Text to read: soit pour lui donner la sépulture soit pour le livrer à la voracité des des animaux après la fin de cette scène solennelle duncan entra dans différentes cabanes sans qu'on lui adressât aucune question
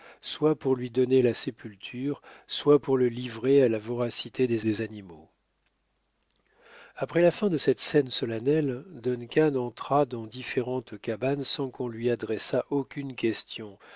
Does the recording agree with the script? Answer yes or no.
yes